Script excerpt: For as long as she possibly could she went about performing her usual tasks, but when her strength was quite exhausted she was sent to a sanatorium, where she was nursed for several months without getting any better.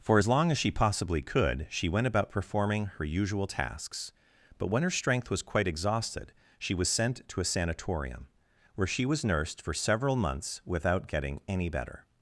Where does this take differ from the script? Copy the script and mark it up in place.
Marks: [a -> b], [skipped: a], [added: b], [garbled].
For as long as she possibly could she went about performing her usual tasks, but when her strength was quite exhausted she was sent to a sanatorium, where she was nursed for several months without getting any better.